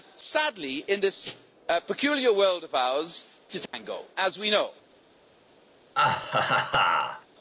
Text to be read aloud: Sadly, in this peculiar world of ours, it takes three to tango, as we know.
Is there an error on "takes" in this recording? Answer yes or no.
yes